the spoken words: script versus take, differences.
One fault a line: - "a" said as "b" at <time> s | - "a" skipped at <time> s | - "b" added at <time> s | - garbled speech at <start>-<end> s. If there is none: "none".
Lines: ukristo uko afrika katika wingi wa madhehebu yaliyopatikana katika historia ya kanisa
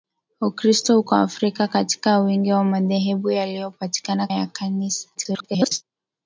- "katika historia" skipped at 4.3 s
- garbled speech at 5.1-5.8 s